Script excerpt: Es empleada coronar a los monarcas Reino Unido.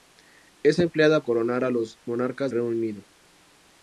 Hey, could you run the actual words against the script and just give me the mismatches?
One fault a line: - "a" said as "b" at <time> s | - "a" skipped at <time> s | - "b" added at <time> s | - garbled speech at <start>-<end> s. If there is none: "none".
none